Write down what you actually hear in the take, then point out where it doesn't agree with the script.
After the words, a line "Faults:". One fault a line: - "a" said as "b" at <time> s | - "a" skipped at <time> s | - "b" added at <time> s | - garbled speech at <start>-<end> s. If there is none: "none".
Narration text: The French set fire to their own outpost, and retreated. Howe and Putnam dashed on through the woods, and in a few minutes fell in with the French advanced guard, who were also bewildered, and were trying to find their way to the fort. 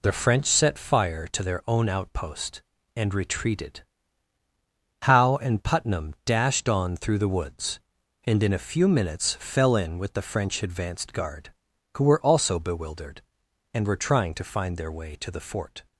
The French set fire to their own outpost, and retreated. Howe and Putnam dashed on through the woods, and in a few minutes fell in with the French advanced guard, who were also bewildered, and were trying to find their way to the fort.
Faults:
none